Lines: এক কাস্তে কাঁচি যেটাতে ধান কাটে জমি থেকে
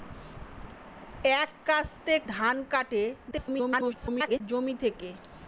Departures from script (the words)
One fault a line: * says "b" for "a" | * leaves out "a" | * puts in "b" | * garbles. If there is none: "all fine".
* leaves out "কাঁচি যেটাতে"
* garbles